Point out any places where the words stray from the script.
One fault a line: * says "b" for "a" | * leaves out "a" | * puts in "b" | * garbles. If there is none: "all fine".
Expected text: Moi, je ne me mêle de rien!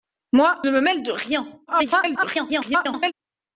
* leaves out "je"
* garbles